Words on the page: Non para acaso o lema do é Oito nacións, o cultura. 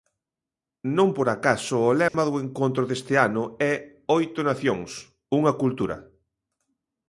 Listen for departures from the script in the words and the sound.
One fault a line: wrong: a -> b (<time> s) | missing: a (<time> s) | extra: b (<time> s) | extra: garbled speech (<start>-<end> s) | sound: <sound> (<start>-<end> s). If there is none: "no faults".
wrong: para -> por (1.1 s)
sound: dropout (2.1-2.1 s)
extra: encontro deste ano (2.4 s)
wrong: o -> unha (5.4 s)